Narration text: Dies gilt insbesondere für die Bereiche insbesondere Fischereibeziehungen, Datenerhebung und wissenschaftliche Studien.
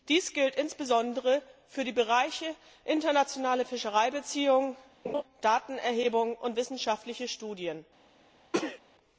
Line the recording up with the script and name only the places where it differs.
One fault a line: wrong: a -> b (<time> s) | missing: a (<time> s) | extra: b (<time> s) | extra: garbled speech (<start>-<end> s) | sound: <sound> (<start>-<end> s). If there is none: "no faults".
wrong: insbesondere -> internationale (2.9 s)
sound: laugh (5.0-5.2 s)
sound: sneeze (8.5-8.8 s)